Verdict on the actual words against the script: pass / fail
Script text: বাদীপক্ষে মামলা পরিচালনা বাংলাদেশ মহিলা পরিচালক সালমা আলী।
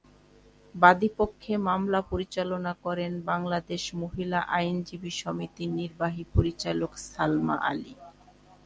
fail